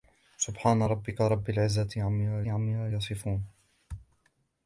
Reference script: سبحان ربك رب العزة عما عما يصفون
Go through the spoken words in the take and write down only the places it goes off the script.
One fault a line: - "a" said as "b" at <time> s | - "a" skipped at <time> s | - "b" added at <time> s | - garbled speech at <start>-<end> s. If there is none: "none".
none